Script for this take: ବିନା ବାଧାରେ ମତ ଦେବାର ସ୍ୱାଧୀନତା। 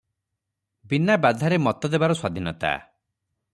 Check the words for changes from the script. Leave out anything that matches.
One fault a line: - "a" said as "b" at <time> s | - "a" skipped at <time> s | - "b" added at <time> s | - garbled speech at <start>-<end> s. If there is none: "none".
none